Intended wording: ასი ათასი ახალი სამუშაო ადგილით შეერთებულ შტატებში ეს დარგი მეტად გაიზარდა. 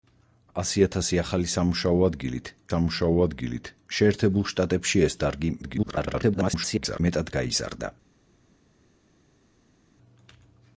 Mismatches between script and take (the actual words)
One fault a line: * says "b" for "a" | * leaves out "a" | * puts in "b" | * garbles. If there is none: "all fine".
* puts in "სამუშაო ადგილით"
* garbles